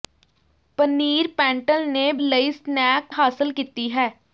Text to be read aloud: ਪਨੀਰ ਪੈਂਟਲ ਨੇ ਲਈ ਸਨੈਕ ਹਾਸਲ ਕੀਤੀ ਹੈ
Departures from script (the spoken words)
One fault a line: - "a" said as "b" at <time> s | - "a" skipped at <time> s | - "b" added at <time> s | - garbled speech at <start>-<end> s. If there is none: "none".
none